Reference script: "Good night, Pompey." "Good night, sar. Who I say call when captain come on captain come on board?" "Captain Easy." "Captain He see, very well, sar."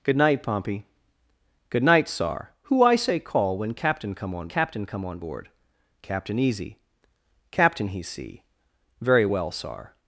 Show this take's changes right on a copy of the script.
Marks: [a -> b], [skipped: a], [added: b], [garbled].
"Good night, Pompey." "Good night, sar. Who I say call when captain come on captain come on board?" "Captain Easy." "Captain He see, very well, sar."